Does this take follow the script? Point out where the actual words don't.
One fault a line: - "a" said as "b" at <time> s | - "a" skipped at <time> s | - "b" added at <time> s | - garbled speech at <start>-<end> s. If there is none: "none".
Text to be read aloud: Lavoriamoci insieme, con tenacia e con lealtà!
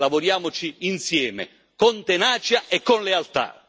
none